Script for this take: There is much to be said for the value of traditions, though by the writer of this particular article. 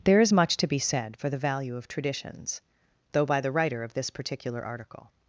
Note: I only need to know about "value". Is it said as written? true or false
true